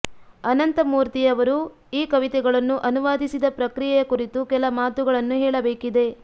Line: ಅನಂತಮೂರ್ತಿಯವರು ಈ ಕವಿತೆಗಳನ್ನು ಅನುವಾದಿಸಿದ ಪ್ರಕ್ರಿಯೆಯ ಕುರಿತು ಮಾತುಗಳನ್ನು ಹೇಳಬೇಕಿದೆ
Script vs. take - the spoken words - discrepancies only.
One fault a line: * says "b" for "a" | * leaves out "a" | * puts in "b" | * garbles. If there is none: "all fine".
* puts in "ಕೆಲ"